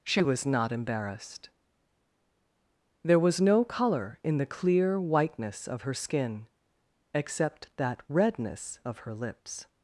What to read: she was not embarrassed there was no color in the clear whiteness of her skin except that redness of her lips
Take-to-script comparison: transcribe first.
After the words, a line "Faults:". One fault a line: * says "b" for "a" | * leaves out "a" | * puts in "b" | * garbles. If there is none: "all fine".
she was not embarrassed there was no color in the clear whiteness of her skin except that redness of her lips
Faults:
all fine